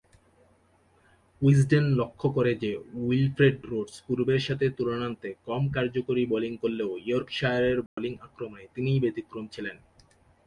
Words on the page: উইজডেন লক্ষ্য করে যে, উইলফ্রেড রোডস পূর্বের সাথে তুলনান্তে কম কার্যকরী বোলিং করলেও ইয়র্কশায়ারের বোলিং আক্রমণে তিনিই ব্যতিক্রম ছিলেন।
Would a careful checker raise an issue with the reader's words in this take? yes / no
no